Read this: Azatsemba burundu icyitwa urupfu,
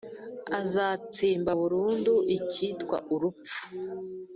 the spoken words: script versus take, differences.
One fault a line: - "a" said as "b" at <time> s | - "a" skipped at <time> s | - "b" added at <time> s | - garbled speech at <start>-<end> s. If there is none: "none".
none